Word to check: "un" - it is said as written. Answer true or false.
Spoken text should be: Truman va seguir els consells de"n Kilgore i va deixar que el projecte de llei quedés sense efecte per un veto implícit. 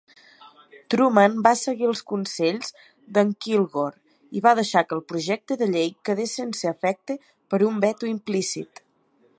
true